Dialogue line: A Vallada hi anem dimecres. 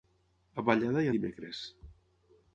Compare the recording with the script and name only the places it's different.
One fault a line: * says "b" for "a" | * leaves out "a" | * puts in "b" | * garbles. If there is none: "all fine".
* leaves out "anem"